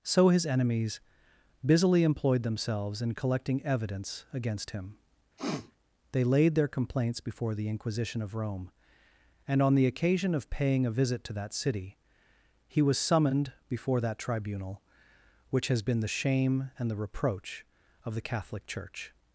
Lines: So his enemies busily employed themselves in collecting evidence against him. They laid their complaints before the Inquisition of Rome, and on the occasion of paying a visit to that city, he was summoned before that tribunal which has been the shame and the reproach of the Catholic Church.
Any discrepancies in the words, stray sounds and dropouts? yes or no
yes